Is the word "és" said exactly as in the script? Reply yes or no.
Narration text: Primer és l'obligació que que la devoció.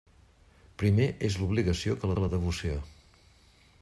yes